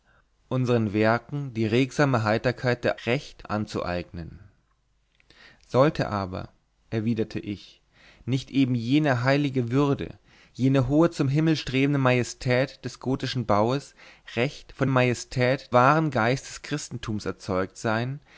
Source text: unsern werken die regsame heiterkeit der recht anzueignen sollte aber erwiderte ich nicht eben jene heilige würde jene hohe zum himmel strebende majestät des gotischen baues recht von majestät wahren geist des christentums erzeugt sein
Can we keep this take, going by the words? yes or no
yes